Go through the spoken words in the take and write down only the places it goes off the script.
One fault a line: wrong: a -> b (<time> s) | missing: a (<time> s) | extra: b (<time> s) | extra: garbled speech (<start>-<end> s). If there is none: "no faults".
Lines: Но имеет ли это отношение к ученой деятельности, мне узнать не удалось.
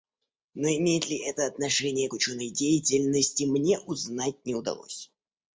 no faults